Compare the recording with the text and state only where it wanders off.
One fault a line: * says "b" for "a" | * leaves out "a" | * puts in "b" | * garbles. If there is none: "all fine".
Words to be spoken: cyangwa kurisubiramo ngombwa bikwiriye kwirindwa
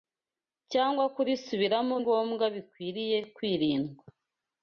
all fine